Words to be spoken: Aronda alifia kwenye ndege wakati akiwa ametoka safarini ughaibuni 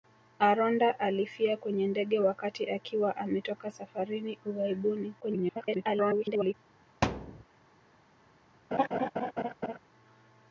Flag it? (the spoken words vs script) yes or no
yes